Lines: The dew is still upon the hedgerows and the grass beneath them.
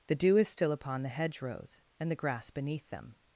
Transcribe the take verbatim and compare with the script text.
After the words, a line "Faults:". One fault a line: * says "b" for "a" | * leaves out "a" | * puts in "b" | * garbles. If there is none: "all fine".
The dew is still upon the hedgerows and the grass beneath them.
Faults:
all fine